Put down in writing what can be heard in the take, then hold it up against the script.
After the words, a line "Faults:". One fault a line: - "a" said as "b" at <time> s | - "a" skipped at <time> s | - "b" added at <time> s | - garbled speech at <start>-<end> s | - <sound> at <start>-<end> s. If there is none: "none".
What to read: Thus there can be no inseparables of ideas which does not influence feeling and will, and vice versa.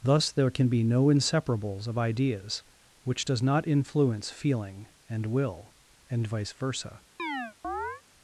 Thus there can be no inseparables of ideas which does not influence feeling and will, and vice versa.
Faults:
- chirp at 7.2-8.0 s